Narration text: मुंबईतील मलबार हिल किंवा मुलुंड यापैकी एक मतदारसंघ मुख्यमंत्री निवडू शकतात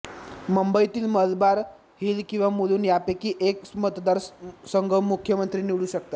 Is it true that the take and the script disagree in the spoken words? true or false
false